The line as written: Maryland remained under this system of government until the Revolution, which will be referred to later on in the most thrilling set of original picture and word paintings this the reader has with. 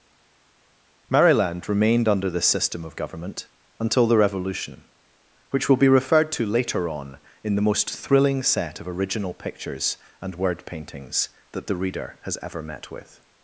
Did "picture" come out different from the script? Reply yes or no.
yes